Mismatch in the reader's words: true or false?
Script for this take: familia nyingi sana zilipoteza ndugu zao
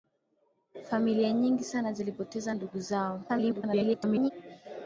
true